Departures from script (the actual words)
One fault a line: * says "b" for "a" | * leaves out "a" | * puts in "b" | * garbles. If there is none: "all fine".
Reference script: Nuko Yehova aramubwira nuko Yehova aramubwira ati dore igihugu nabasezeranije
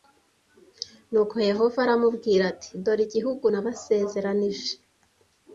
* leaves out "nuko Yehova aramubwira"